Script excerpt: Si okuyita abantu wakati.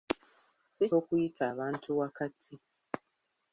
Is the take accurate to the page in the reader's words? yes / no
yes